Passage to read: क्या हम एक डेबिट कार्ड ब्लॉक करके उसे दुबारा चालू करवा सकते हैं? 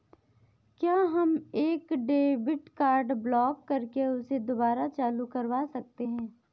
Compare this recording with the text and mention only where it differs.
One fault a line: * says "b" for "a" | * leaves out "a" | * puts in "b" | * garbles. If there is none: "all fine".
all fine